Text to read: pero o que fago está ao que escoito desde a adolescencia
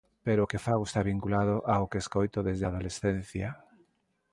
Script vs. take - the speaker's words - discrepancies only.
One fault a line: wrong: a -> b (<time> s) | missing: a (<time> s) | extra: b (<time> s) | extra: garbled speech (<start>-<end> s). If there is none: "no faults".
extra: vinculado (1.1 s)